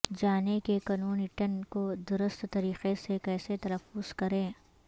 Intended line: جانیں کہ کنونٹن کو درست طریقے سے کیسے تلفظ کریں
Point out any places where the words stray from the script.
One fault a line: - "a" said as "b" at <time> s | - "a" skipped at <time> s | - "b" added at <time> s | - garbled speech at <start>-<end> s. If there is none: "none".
none